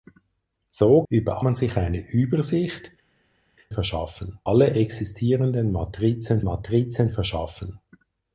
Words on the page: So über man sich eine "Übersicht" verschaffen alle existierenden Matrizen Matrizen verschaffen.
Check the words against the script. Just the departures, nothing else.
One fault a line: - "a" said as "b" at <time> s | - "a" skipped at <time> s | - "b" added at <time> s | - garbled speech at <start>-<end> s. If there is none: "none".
none